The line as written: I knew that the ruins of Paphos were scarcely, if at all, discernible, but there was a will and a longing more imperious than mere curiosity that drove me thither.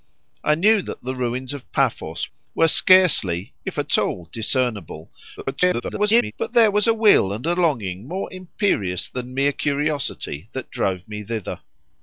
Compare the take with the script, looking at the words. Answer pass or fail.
fail